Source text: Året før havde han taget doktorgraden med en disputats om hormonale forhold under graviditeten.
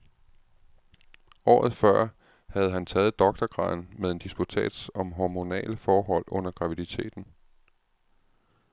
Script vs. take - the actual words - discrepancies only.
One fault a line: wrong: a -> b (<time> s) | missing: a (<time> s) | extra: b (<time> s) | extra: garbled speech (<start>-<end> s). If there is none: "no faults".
no faults